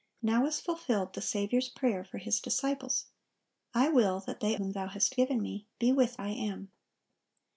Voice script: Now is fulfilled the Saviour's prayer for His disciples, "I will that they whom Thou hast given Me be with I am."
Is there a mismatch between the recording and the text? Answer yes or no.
no